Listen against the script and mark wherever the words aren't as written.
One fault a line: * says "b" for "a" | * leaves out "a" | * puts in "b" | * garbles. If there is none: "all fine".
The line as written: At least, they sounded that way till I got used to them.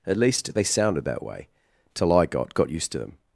* puts in "got"